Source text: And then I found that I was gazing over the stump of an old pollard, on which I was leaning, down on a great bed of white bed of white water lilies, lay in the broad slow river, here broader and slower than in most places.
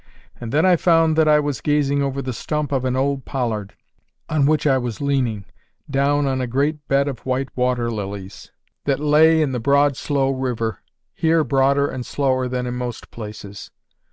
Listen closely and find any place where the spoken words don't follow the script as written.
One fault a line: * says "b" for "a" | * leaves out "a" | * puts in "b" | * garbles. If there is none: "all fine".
* leaves out "bed of white"
* puts in "that"